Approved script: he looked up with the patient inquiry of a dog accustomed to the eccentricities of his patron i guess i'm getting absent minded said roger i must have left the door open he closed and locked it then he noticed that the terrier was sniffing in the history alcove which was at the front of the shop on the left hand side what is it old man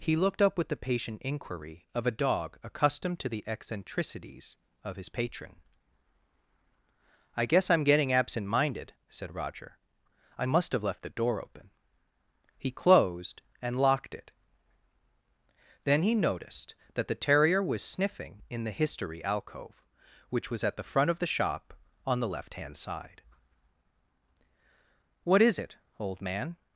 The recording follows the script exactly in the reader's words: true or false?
true